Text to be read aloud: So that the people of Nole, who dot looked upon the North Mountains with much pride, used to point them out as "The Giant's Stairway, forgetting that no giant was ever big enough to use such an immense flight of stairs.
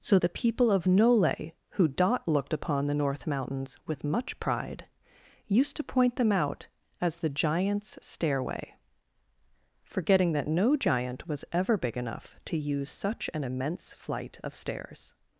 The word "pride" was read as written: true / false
true